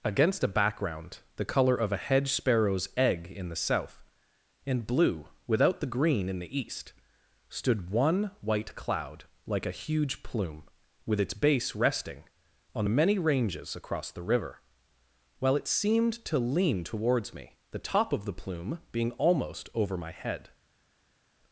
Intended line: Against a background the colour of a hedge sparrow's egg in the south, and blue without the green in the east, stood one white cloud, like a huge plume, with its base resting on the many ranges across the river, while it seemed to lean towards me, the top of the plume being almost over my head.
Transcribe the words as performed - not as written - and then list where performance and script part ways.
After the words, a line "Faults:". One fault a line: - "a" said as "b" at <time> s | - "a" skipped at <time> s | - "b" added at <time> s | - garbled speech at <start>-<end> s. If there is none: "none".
Against a background the colour of a hedge sparrow's egg in the south, and blue without the green in the east, stood one white cloud, like a huge plume, with its base resting on the many ranges across the river, while it seemed to lean towards me, the top of the plume being almost over my head.
Faults:
none